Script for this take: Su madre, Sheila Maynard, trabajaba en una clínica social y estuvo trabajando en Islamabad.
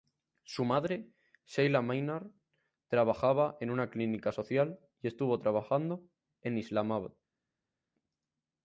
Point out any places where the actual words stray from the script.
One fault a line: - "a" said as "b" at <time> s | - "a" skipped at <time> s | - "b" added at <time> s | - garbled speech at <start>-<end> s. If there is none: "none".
none